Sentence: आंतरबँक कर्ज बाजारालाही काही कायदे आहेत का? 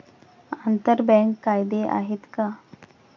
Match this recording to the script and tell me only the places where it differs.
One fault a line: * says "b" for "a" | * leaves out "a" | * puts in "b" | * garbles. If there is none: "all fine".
* leaves out "कर्ज बाजारालाही काही"